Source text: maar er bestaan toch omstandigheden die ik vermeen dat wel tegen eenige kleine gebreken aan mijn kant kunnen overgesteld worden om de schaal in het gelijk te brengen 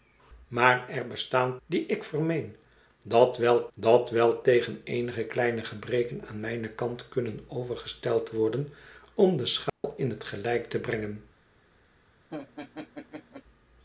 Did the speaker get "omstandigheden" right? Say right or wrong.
wrong